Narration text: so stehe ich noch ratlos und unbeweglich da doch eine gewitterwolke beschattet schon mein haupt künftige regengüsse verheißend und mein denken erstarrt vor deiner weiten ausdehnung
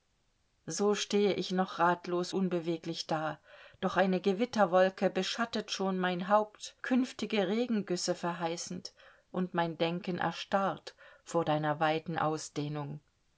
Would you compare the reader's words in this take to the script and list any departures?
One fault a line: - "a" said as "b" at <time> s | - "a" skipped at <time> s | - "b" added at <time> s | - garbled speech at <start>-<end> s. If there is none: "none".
- "und" skipped at 2.3 s